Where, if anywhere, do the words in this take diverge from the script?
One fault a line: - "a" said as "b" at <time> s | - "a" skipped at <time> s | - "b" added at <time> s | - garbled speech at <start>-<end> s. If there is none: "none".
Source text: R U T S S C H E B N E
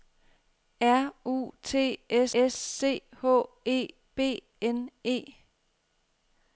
none